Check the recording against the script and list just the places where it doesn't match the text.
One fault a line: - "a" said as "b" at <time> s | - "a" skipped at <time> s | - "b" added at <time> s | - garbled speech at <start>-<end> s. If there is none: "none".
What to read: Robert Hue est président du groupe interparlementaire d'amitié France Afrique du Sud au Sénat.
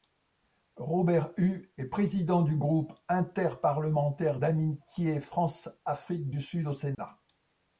none